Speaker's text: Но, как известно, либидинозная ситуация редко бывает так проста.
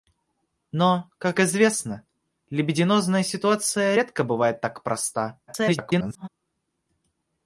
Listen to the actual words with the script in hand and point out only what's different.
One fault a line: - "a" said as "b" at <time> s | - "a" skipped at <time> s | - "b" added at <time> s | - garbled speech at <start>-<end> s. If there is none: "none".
- garbled speech at 5.5-6.3 s